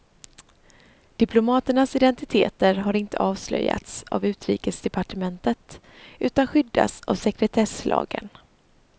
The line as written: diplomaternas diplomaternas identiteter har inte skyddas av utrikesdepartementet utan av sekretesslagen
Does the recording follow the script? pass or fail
fail